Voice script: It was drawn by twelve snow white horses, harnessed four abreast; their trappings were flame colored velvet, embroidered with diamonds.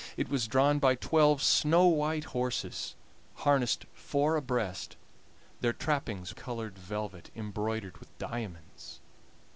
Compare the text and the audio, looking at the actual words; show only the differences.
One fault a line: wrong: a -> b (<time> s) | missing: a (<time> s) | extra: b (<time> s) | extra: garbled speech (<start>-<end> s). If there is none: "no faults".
missing: were flame (6.3 s)